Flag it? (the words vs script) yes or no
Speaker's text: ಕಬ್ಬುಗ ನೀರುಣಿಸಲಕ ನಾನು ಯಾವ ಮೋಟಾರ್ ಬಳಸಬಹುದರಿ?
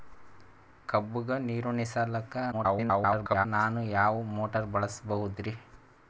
yes